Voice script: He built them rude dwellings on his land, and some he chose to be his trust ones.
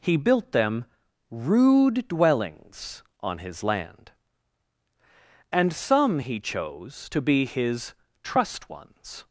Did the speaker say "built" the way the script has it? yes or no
yes